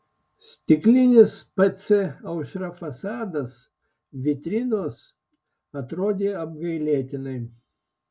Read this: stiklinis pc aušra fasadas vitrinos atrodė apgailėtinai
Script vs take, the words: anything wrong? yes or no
no